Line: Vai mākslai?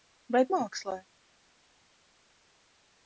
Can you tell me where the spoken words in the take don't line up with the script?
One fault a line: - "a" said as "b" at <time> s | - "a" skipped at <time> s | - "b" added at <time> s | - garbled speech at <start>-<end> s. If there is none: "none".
none